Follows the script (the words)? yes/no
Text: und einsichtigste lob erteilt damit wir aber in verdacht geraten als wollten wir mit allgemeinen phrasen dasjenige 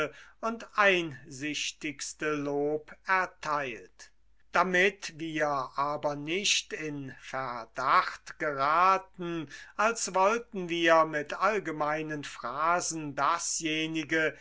no